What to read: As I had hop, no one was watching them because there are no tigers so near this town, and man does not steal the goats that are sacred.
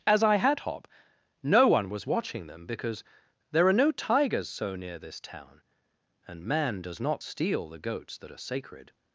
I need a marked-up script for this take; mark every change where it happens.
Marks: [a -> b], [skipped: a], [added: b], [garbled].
As I had hop, no one was watching them because there are no tigers so near this town, and man does not steal the goats that are sacred.